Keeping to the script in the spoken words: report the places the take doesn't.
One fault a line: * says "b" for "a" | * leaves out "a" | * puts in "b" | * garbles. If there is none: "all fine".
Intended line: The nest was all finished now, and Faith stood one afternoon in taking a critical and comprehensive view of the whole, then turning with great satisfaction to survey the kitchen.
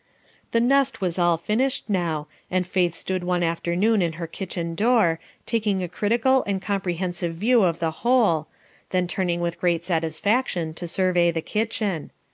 * puts in "her kitchen door"